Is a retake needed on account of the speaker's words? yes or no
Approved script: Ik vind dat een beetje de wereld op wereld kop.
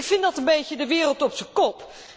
yes